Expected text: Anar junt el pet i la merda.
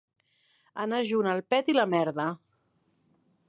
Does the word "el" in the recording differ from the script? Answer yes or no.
no